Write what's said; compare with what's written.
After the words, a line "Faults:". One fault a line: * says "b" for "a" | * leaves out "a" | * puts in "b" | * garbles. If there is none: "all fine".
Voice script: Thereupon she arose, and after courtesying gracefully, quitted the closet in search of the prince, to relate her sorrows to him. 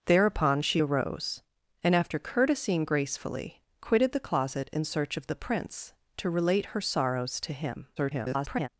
Thereupon she arose, and after courtesying gracefully, quitted the closet in search of the prince, to relate her sorrows to him. [garbled]
Faults:
* garbles